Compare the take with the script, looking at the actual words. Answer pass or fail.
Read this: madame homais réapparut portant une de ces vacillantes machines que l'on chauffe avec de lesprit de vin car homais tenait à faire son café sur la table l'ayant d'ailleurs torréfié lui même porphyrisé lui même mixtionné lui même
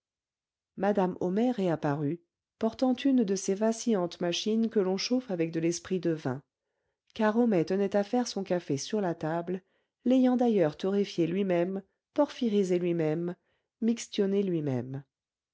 pass